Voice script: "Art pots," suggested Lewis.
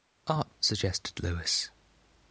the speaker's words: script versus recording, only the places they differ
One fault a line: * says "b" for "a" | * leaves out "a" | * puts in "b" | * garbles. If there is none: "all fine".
* leaves out "pots"